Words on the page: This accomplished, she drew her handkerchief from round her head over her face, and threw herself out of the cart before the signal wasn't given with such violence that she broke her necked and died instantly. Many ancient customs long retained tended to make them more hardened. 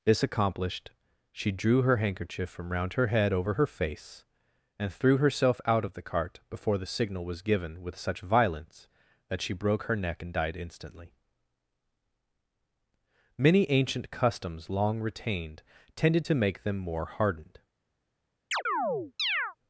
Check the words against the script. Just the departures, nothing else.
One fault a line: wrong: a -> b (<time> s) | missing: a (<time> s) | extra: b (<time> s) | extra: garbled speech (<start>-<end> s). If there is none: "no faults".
wrong: wasn't -> was (7.3 s)
wrong: necked -> neck (10.0 s)